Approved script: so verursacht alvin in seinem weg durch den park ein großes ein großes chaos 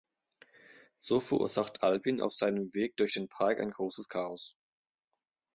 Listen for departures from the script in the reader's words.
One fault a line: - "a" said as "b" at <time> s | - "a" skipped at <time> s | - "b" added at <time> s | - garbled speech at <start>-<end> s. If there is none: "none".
- "in" said as "auf" at 2.2 s
- "ein großes" skipped at 4.1 s